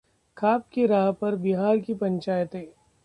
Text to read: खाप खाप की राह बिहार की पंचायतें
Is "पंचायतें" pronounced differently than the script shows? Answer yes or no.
no